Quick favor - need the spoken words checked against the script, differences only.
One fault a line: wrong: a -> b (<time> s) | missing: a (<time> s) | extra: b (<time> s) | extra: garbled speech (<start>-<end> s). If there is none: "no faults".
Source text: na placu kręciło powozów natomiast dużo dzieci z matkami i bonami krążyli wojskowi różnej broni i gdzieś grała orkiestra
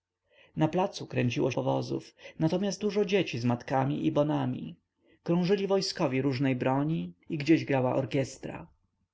no faults